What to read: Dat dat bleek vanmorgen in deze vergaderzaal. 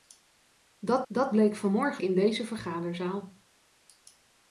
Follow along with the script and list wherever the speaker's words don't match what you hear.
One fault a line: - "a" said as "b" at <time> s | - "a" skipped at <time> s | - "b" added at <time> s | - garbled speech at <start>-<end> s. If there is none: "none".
none